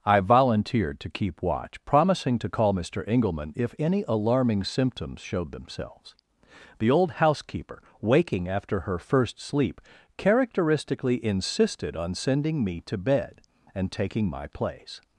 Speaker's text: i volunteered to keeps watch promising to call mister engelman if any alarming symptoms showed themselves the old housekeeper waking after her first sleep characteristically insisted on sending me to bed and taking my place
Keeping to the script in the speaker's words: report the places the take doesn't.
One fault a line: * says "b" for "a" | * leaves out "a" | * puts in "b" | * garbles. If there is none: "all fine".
* says "keep" for "keeps"